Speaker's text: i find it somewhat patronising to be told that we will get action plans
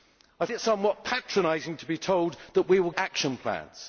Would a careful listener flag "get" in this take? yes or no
yes